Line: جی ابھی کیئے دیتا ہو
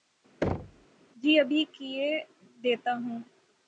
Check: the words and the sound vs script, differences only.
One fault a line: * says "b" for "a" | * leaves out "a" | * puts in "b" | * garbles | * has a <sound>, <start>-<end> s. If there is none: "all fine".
* has a thud, 0.4-0.9 s